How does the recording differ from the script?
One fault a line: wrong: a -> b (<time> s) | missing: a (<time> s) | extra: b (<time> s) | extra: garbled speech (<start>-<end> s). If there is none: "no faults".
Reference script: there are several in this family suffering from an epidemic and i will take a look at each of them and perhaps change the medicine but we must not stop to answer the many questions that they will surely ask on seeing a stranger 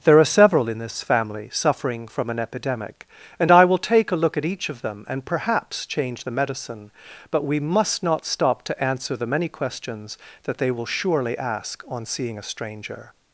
no faults